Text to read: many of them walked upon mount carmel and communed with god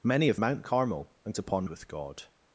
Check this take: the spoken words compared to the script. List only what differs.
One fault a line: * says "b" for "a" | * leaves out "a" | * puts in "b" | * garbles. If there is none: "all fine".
* leaves out "them walked upon"
* says "upon" for "communed"